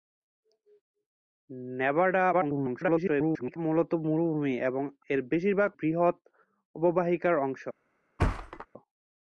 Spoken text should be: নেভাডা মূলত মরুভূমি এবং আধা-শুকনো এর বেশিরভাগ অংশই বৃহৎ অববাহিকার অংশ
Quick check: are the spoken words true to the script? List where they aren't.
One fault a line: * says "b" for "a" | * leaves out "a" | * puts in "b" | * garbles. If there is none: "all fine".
* garbles
* leaves out "আধা-শুকনো"
* leaves out "অংশই"